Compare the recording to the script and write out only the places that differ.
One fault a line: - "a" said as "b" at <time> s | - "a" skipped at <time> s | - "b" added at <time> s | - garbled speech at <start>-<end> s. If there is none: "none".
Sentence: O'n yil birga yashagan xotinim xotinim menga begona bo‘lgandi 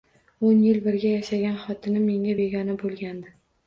- "xotinim" skipped at 2.1 s